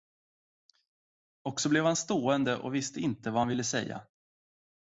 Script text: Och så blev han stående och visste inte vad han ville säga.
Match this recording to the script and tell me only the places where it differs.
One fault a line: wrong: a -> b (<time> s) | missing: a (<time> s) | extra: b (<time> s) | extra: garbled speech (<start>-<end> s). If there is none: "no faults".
no faults